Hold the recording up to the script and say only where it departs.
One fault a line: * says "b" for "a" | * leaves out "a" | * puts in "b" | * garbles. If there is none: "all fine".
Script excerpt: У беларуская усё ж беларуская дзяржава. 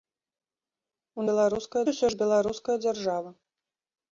all fine